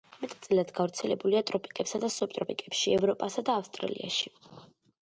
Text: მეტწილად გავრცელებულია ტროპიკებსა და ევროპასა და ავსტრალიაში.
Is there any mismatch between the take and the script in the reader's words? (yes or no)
yes